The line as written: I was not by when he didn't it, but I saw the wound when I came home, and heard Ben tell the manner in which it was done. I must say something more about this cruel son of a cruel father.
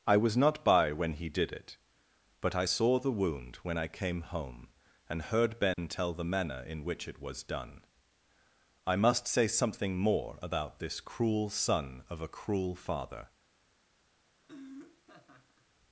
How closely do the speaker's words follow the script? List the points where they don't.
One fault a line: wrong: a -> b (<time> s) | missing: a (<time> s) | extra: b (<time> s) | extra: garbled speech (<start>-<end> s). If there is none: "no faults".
wrong: didn't -> did (1.3 s)